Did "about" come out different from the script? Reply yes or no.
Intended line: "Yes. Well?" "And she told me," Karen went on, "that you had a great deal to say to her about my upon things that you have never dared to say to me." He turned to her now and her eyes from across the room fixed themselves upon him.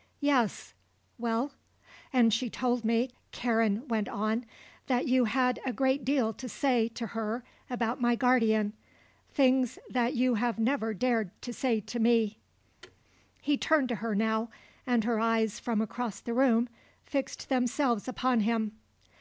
no